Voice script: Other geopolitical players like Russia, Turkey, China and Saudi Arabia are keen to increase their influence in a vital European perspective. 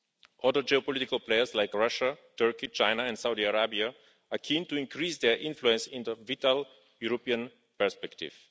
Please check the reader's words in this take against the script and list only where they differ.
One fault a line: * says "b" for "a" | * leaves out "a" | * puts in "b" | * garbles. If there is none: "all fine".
all fine